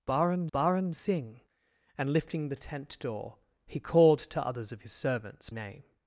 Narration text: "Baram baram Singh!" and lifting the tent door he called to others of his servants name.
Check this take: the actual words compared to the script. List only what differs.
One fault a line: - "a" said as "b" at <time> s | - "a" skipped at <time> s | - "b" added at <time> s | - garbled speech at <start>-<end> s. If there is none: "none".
none